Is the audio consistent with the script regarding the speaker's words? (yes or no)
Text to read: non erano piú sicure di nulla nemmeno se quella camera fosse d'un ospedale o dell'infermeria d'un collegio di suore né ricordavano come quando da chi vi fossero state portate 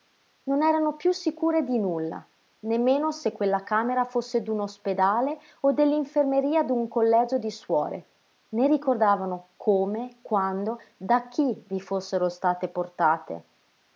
yes